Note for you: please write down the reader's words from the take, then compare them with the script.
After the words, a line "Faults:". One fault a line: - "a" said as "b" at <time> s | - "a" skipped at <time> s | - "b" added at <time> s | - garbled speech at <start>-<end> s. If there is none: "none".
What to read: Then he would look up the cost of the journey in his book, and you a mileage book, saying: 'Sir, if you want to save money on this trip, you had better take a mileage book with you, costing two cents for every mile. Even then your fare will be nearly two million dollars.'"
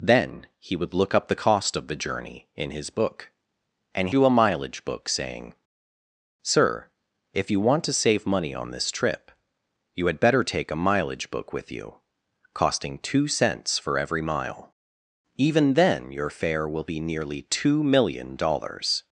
Then he would look up the cost of the journey in his book, and you a mileage book, saying: 'Sir, if you want to save money on this trip, you had better take a mileage book with you, costing two cents for every mile. Even then your fare will be nearly two million dollars.'"
Faults:
none